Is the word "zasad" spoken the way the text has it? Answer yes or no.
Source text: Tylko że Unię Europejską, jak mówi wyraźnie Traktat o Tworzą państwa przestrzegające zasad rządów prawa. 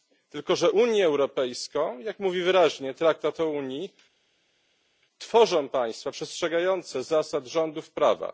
yes